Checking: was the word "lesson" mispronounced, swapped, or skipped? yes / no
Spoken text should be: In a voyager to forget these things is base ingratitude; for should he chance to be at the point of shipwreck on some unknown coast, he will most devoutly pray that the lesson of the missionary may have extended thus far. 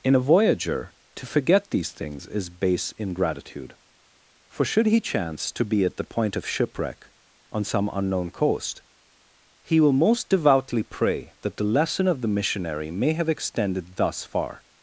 no